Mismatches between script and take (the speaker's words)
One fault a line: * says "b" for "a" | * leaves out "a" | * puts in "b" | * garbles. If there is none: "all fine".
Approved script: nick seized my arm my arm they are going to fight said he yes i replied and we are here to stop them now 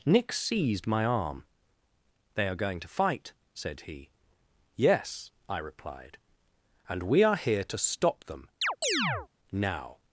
* leaves out "my arm"